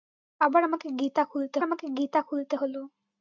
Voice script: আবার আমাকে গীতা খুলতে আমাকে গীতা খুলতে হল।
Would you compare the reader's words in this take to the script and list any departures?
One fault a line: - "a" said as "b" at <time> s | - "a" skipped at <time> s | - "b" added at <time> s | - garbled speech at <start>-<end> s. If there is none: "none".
none